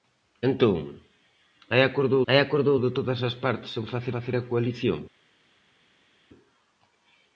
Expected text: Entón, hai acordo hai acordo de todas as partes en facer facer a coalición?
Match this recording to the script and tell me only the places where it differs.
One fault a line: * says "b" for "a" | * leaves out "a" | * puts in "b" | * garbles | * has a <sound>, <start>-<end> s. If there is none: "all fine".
all fine